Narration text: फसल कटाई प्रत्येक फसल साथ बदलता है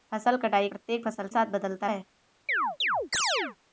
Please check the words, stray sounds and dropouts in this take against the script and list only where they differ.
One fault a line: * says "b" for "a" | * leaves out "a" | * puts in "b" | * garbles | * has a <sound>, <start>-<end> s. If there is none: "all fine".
* has a chirp, 2.5-3.6 s